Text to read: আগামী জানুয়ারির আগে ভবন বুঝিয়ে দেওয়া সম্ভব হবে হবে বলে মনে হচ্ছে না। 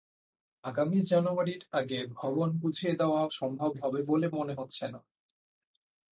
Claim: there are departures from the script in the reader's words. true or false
true